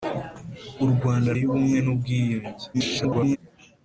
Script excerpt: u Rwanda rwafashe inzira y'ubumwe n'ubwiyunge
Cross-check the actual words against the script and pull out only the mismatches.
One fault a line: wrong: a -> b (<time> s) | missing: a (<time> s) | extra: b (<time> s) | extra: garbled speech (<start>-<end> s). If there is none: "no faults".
missing: rwafashe inzira (1.3 s)
extra: garbled speech (2.7-3.4 s)